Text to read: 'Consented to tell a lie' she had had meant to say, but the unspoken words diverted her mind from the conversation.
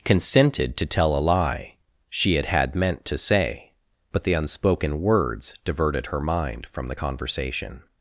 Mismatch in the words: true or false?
false